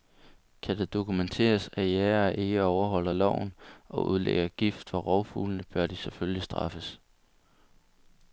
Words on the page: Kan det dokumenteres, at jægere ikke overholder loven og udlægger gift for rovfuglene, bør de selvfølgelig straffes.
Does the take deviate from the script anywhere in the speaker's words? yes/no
no